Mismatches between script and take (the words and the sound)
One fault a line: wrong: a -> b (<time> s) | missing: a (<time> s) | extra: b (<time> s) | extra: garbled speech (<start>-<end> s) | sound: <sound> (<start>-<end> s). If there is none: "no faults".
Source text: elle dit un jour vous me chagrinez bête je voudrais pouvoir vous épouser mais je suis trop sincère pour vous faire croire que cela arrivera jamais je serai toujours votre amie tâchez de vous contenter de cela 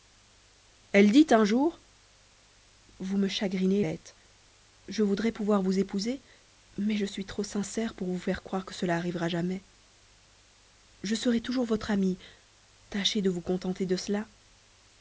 no faults